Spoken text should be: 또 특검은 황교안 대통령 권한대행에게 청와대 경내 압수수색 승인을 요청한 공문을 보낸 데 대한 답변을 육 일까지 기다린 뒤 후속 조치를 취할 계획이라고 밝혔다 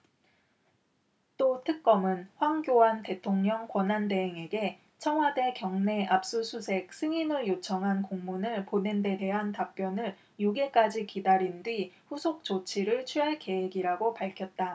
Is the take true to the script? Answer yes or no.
yes